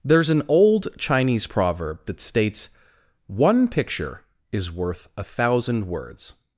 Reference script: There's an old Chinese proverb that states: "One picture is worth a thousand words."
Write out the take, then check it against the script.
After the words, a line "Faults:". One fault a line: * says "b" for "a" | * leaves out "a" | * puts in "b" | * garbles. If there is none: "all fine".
There's an old Chinese proverb that states: "One picture is worth a thousand words."
Faults:
all fine